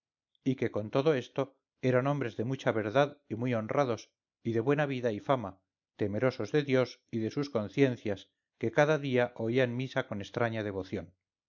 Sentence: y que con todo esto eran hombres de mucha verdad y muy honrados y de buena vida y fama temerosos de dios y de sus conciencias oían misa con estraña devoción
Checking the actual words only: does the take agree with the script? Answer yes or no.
no